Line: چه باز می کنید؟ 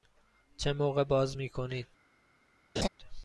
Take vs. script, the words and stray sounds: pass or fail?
fail